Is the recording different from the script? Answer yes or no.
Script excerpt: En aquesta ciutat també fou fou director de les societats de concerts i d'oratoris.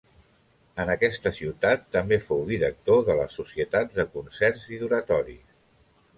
yes